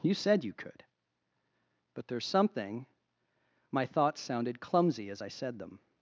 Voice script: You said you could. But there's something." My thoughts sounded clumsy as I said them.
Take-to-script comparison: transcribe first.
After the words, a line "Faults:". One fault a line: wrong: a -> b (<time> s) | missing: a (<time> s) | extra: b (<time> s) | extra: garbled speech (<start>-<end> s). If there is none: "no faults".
You said you could. But there's something." My thoughts sounded clumsy as I said them.
Faults:
no faults